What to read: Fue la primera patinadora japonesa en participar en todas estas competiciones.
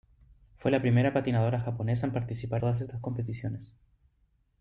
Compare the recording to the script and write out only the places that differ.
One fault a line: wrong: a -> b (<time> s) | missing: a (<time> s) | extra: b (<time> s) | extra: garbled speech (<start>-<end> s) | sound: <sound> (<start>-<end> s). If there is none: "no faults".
missing: en (2.6 s)